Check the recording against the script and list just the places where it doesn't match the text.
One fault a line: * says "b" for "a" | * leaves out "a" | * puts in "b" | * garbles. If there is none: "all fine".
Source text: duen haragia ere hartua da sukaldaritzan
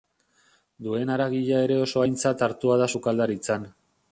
* puts in "oso aintzat"